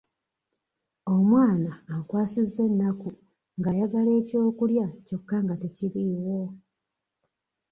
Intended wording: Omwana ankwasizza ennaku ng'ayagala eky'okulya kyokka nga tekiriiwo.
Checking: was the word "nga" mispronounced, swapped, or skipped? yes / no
no